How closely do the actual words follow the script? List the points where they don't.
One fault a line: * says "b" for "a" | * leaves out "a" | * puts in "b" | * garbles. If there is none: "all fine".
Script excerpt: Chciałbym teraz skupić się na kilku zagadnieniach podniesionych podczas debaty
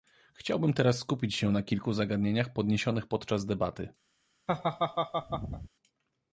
all fine